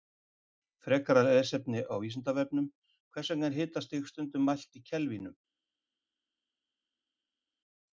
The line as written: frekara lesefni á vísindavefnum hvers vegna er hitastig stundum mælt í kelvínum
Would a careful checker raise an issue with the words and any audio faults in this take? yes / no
no